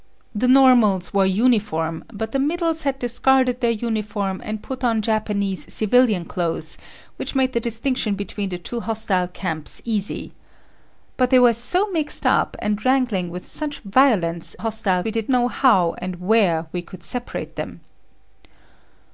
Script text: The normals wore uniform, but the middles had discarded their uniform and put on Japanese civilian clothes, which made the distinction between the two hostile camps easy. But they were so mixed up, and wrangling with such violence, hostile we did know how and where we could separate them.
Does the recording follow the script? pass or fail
pass